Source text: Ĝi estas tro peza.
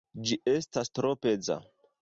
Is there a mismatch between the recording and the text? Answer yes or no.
no